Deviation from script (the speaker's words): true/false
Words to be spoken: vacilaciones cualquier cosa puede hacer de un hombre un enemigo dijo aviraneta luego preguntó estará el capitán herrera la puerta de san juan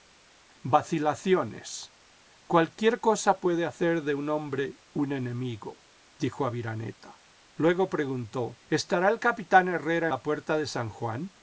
false